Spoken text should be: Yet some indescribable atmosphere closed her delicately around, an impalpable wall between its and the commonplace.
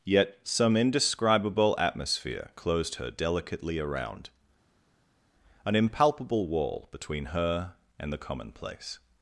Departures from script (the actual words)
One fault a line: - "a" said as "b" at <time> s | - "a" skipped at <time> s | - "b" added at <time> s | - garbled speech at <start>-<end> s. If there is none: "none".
- "its" said as "her" at 7.2 s